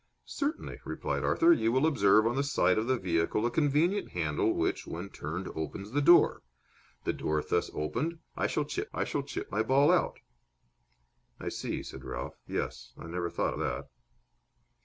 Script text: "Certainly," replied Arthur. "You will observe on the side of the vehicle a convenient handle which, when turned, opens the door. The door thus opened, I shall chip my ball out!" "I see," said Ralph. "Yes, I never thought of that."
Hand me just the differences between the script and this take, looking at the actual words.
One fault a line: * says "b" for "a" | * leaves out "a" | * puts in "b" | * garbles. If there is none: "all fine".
* puts in "I shall chip"
* leaves out "of"